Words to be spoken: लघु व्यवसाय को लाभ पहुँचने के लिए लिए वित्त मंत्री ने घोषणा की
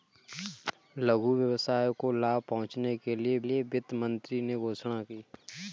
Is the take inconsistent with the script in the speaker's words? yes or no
no